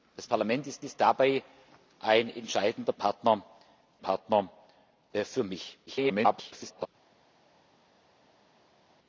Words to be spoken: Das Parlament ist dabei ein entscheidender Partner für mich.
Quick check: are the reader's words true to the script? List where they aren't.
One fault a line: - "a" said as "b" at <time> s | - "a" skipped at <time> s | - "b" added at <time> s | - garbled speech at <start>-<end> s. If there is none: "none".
- "ist" added at 0.8 s
- "Partner" added at 4.0 s
- garbled speech at 5.9-6.9 s